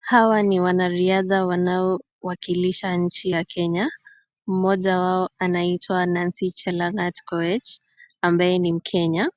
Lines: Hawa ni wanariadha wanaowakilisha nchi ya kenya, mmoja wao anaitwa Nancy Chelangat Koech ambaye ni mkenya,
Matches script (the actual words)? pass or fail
pass